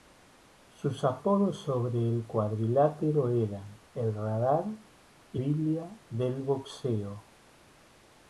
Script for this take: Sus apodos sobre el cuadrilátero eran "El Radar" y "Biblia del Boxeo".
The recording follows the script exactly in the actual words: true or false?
true